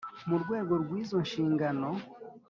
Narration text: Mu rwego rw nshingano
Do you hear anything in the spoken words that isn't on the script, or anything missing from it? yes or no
yes